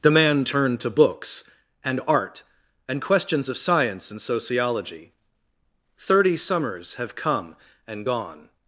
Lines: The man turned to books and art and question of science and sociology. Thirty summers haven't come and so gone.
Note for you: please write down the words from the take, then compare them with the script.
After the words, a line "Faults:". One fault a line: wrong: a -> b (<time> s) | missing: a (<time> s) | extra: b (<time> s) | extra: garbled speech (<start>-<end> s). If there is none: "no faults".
The man turned to books and art and questions of science and sociology. Thirty summers have come and gone.
Faults:
wrong: question -> questions (3.0 s)
wrong: haven't -> have (7.0 s)
missing: so (8.1 s)